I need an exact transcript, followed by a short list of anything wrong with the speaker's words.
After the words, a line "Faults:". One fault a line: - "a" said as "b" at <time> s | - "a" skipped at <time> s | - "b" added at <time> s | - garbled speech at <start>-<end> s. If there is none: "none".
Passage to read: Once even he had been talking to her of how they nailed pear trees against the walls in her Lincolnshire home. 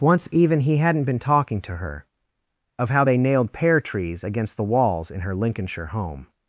Once even he hadn't been talking to her of how they nailed pear trees against the walls in her Lincolnshire home.
Faults:
- "had" said as "hadn't" at 0.8 s